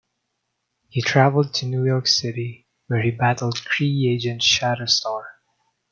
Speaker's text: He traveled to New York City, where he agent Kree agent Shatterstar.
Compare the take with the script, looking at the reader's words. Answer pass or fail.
fail